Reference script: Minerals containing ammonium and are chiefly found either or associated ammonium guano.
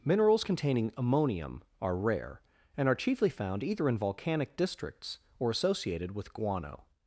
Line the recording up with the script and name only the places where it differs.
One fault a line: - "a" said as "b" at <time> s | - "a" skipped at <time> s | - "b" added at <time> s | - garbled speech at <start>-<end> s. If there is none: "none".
- "are rare" added at 1.8 s
- "in volcanic districts" added at 3.9 s
- "ammonium" said as "with" at 6.1 s